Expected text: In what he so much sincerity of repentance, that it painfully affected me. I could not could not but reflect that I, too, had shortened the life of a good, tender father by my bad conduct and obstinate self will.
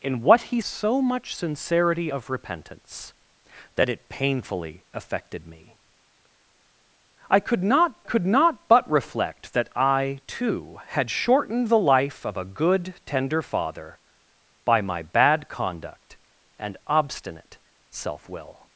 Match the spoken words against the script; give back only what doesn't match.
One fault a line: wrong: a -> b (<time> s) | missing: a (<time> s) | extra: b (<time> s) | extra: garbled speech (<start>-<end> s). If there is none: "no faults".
no faults